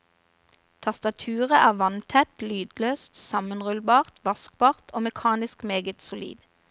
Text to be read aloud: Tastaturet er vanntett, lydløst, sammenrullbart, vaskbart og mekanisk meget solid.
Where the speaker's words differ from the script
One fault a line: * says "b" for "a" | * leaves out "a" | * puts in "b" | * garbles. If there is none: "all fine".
all fine